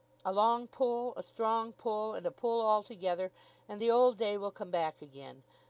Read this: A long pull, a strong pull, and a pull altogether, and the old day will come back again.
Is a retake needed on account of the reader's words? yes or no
no